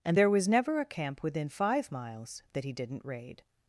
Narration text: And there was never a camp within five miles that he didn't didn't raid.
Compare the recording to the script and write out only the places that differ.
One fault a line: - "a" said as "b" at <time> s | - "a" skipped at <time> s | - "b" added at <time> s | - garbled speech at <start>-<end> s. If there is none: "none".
- "didn't" skipped at 3.0 s